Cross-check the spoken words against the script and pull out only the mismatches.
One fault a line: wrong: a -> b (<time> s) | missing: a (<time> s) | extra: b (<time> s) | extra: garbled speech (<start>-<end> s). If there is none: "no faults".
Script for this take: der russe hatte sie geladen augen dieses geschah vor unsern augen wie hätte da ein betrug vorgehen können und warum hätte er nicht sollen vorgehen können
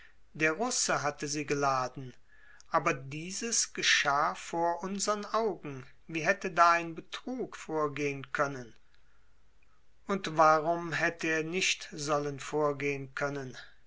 wrong: augen -> aber (2.7 s)